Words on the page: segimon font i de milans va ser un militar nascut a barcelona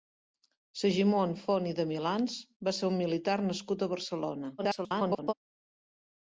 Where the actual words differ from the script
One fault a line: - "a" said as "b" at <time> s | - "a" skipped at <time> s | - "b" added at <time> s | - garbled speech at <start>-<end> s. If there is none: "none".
- garbled speech at 4.6-5.3 s